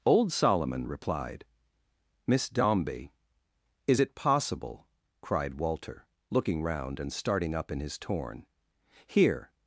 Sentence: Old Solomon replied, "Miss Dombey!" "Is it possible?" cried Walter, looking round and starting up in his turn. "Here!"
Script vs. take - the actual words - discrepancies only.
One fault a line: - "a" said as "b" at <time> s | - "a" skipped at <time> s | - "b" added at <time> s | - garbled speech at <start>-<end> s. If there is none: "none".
- "turn" said as "torn" at 8.0 s